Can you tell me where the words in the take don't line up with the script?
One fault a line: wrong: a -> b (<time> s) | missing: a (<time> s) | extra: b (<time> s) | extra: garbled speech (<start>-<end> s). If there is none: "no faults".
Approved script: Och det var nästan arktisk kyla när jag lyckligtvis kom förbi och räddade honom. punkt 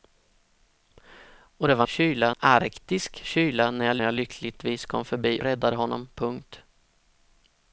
wrong: nästan -> kyla (1.9 s)
extra: jag (4.0 s)
missing: och (5.4 s)